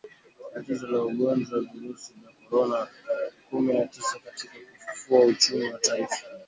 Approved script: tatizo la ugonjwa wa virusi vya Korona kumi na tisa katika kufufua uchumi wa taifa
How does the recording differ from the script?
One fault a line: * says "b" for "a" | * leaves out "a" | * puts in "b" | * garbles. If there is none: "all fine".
all fine